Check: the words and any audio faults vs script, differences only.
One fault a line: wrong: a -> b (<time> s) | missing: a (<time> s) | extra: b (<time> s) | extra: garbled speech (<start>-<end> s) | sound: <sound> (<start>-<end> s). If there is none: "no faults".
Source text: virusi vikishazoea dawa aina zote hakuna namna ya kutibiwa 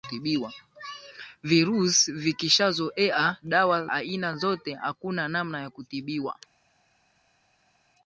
no faults